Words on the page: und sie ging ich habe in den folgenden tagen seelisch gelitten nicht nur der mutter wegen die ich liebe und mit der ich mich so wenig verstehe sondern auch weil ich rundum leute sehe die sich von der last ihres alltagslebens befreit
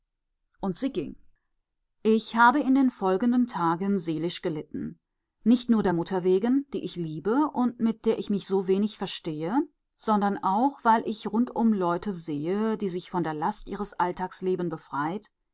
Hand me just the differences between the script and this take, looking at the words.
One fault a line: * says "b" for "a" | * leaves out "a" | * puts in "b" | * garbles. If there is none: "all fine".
all fine